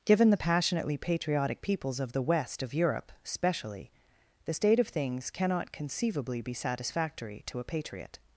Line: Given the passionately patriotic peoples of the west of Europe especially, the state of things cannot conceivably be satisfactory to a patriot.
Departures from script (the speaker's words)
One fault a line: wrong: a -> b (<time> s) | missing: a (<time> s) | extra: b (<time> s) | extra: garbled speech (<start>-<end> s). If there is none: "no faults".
no faults